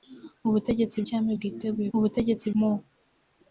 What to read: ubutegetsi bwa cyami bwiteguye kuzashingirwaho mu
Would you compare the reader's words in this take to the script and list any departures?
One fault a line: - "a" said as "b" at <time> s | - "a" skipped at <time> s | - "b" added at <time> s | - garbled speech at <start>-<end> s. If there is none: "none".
- "bwa" skipped at 1.0 s
- "kuzashingirwaho" said as "ubutegetsi" at 2.0 s